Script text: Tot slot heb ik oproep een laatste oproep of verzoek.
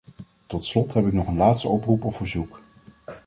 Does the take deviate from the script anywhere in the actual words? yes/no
yes